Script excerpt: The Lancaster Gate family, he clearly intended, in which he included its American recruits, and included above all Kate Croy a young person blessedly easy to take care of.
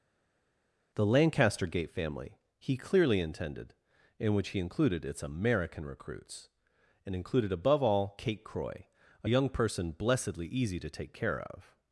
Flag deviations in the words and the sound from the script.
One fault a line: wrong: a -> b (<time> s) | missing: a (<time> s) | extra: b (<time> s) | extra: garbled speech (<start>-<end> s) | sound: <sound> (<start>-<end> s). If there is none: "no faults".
no faults